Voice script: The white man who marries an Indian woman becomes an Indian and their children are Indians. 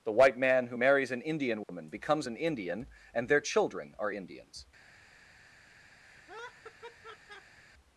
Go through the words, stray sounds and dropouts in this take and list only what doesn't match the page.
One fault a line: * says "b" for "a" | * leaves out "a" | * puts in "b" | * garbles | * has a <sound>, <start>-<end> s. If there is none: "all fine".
* has a dropout, 1.6-1.7 s
* has a laugh, 6.0-7.6 s